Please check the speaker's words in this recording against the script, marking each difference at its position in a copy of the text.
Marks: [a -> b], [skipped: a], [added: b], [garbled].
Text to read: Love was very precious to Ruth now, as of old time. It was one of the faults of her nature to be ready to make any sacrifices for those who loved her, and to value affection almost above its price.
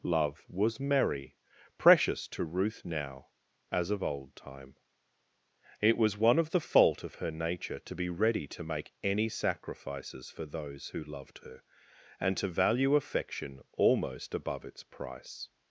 Love was [very -> merry] precious to Ruth now, as of old time. It was one of the [faults -> fault] of her nature to be ready to make any sacrifices for those who loved her, and to value affection almost above its price.